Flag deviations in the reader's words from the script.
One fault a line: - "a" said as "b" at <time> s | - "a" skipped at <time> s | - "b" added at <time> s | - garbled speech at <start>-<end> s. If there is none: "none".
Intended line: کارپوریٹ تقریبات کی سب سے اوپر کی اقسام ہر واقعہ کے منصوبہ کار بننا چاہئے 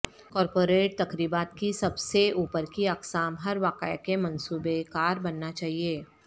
none